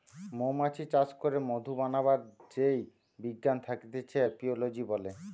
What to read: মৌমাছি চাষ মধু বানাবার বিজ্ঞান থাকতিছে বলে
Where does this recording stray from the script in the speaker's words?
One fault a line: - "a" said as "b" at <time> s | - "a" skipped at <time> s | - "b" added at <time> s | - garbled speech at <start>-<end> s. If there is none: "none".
- "করে" added at 1.2 s
- "যেই" added at 2.5 s
- "এপিওলোজি" added at 4.3 s